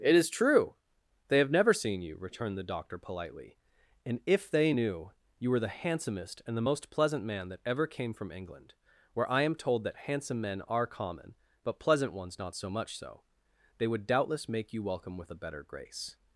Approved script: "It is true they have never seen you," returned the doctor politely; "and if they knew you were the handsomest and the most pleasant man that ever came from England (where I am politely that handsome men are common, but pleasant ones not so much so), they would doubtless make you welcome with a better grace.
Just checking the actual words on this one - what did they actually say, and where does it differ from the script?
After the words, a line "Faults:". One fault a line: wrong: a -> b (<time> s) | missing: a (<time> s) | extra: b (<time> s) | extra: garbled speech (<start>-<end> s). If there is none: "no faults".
"It is true they have never seen you," returned the doctor politely; "and if they knew you were the handsomest and the most pleasant man that ever came from England (where I am told that handsome men are common, but pleasant ones not so much so), they would doubtless make you welcome with a better grace.
Faults:
wrong: politely -> told (9.6 s)